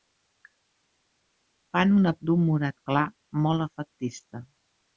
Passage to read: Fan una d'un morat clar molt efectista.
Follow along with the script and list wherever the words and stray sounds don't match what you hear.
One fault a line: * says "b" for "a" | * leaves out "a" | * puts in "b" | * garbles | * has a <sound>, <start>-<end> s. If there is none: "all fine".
all fine